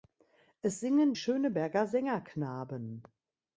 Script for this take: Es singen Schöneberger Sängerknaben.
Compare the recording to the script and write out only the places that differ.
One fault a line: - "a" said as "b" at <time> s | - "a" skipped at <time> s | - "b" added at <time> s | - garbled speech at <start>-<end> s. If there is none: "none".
none